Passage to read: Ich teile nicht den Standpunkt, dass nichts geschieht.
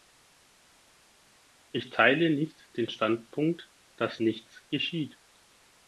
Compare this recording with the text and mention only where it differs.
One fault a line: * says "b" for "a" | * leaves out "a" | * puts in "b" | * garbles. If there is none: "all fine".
all fine